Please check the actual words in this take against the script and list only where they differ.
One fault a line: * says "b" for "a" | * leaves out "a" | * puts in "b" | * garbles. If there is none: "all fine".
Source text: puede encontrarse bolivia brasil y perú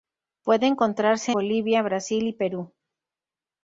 all fine